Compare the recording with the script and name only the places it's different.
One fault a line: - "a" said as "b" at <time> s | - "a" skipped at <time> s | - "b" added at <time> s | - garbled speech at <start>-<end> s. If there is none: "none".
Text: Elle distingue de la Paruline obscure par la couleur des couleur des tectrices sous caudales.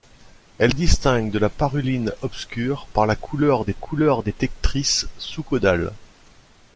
none